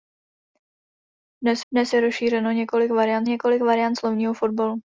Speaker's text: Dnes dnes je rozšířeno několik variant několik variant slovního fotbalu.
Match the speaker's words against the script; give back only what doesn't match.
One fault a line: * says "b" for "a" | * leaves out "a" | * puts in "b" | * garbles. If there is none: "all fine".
all fine